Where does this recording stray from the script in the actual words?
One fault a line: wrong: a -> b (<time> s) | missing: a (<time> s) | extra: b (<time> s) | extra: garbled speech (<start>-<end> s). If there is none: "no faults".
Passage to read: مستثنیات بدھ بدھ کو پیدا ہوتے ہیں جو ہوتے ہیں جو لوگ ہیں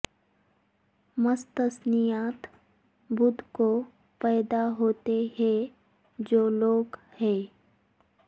missing: بدھ (3.4 s)
missing: ہوتے ہیں جو (6.5 s)